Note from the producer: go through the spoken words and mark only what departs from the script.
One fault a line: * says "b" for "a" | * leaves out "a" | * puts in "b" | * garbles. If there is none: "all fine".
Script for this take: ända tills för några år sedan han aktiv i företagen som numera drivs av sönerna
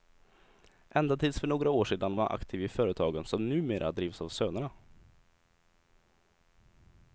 all fine